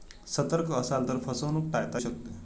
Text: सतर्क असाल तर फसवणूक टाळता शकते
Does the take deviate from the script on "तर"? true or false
false